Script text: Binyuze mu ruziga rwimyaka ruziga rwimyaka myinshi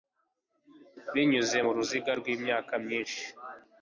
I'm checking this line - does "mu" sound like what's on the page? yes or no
yes